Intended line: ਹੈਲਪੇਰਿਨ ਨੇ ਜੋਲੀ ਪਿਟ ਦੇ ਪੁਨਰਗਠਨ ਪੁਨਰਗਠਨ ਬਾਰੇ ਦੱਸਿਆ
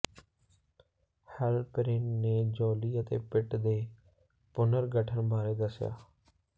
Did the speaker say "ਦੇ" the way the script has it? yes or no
yes